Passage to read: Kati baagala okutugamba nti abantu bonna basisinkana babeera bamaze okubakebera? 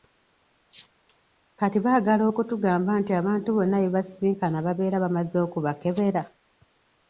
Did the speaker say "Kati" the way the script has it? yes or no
yes